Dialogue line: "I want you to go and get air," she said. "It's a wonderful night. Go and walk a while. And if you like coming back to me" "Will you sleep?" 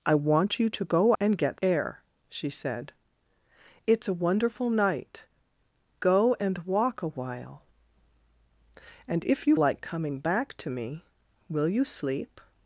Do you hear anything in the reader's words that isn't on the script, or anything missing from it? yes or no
no